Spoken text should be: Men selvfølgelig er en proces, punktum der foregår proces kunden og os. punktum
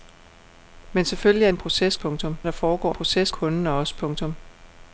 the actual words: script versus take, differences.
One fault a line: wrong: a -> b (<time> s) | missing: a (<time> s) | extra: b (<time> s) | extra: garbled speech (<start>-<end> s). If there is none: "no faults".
no faults